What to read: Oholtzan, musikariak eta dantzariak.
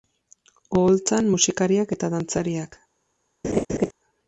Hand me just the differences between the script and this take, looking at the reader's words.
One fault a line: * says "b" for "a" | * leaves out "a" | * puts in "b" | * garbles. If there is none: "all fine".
all fine